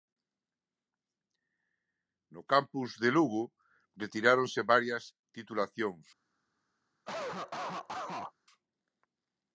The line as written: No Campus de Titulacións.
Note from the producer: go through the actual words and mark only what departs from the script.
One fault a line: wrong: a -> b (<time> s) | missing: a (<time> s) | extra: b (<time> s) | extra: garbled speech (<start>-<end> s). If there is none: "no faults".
extra: Lugo retiráronse varias (3.2 s)